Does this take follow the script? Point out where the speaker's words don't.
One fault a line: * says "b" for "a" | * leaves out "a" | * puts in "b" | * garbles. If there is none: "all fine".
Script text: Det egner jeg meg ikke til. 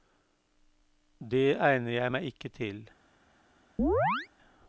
all fine